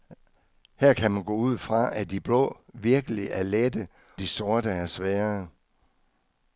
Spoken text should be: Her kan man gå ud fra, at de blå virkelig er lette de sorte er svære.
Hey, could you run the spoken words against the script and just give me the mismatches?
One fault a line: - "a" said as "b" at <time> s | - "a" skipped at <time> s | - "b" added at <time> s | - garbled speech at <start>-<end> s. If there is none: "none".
none